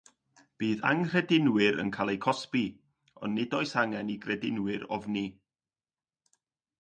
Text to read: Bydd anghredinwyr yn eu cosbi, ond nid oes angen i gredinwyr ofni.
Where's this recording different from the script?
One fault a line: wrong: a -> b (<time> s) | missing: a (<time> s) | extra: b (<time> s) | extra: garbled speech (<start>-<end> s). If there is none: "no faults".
extra: cael (2.0 s)